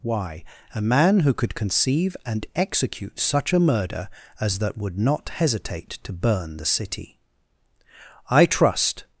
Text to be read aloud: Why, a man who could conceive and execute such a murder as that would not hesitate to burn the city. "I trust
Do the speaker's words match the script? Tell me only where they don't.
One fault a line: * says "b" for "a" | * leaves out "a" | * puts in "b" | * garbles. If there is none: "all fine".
all fine